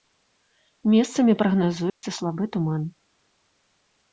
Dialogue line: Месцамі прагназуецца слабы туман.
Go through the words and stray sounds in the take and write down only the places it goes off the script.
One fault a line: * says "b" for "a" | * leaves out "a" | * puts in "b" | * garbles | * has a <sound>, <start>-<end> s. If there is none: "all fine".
* has a dropout, 1.9-2.0 s